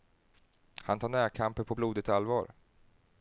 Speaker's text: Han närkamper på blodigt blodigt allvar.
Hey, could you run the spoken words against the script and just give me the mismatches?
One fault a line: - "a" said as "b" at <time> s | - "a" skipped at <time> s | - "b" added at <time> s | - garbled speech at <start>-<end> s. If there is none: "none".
- "tar" added at 1.0 s
- "blodigt" skipped at 2.1 s